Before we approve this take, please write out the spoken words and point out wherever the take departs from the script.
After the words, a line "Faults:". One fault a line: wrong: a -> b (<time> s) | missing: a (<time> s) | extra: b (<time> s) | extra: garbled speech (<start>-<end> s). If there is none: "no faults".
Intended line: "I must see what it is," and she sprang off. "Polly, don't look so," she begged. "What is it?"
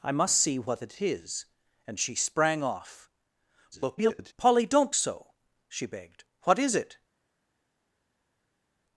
"I must see what it is," and she sprang off. [garbled] "Polly, don't so," she begged. "What is it?"
Faults:
extra: garbled speech (3.7-4.3 s)
missing: look (4.9 s)